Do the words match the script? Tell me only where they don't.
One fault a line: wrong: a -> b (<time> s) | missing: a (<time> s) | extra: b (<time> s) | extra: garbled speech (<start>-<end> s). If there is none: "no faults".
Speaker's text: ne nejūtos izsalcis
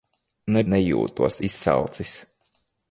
no faults